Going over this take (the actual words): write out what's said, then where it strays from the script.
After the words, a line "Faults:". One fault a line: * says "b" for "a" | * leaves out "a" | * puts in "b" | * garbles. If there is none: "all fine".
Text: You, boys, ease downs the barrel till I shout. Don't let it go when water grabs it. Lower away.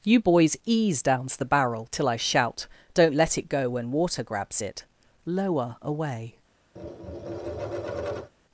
You, boys, ease downs the barrel till I shout. Don't let it go when water grabs it. Lower away.
Faults:
all fine